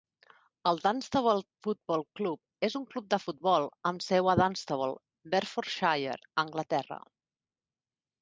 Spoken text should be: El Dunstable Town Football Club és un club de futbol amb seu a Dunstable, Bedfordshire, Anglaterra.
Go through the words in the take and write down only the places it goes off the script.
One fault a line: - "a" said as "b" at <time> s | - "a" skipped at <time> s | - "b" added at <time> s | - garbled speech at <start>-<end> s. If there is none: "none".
- "Town" skipped at 1.4 s